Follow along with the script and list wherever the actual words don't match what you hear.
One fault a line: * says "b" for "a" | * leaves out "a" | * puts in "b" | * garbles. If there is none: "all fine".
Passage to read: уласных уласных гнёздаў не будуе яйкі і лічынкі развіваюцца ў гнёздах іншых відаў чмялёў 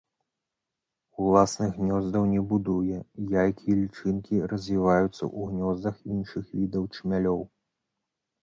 * leaves out "уласных"